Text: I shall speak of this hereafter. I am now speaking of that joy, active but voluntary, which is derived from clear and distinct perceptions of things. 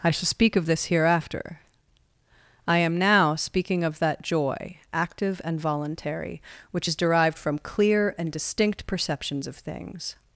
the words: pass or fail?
fail